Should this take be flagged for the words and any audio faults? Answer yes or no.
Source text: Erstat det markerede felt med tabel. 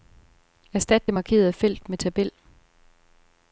no